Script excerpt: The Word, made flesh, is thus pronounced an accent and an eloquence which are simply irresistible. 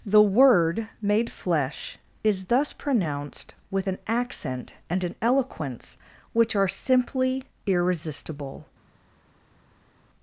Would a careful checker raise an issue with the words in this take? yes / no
yes